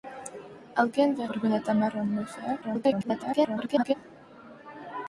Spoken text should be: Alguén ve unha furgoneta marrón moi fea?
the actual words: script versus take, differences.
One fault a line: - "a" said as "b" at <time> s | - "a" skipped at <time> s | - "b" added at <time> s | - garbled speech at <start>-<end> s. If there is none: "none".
- "unha" skipped at 1.2 s
- garbled speech at 2.6-3.9 s